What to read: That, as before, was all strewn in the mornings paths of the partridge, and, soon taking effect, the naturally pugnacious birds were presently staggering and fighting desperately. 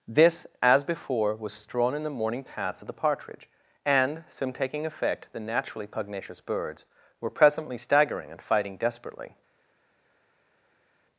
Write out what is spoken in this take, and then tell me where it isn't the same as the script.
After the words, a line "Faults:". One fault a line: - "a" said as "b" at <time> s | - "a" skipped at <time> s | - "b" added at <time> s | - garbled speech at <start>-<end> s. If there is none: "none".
This, as before, was strewn in the morning paths of the partridge, and, soon taking effect, the naturally pugnacious birds were presently staggering and fighting desperately.
Faults:
- "That" said as "This" at 0.1 s
- "all" skipped at 1.5 s
- "mornings" said as "morning" at 2.1 s